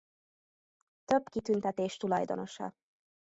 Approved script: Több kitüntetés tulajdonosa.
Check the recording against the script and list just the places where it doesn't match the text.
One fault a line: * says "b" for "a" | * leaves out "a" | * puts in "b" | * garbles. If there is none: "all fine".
all fine